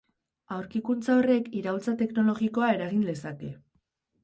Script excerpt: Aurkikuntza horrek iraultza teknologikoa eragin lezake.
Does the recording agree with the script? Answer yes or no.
yes